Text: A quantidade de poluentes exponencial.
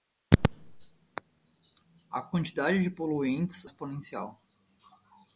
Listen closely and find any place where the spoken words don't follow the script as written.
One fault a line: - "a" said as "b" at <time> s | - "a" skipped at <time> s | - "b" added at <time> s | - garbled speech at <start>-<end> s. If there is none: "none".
none